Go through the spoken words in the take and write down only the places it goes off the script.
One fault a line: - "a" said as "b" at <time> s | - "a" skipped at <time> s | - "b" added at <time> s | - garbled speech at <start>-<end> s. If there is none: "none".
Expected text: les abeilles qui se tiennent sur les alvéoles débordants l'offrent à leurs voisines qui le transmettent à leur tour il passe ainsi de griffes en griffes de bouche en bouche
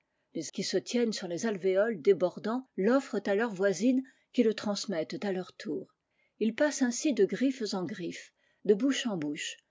- "abeilles" skipped at 0.5 s